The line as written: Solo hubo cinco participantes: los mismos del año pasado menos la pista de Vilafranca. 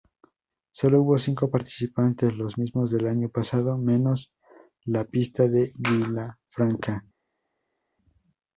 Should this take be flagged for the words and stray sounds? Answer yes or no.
no